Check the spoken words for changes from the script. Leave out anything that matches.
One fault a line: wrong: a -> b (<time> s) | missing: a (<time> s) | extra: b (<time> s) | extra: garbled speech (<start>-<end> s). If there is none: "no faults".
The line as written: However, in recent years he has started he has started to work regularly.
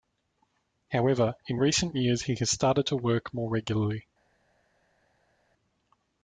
missing: he has started (2.9 s)
extra: more (3.3 s)